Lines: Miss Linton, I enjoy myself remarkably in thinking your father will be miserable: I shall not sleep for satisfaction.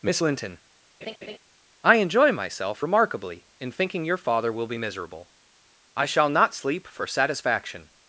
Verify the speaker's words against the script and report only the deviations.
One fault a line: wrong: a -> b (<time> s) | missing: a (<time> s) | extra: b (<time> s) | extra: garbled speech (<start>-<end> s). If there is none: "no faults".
no faults